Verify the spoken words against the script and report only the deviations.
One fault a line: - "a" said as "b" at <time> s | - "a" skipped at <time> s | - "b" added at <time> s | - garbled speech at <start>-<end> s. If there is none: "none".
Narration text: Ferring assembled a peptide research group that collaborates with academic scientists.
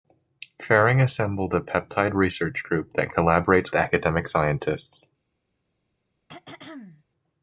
- "with" skipped at 3.7 s